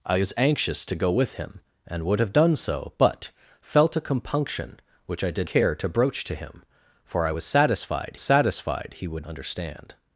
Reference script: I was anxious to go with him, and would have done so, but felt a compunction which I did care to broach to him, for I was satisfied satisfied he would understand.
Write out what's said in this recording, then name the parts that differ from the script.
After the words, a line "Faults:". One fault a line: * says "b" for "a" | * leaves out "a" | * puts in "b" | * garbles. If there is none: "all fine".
I was anxious to go with him, and would have done so, but felt a compunction which I did care to broach to him, for I was satisfied satisfied he would understand.
Faults:
all fine